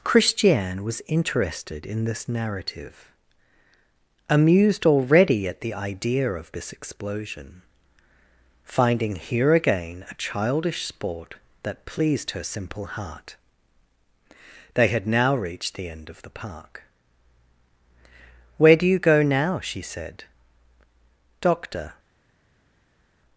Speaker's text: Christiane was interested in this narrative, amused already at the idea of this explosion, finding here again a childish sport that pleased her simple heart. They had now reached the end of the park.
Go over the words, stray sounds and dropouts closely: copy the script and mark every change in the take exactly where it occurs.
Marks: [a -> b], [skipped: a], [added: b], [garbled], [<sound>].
Christiane was interested in this narrative, amused already at the idea of this explosion, finding here again a childish sport that pleased her simple heart. They had now reached the end of the park. [added: Where do you go now she said Doctor]